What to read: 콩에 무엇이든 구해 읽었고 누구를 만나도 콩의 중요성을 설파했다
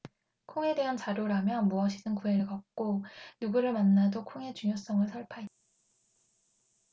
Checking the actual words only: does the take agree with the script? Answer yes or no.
no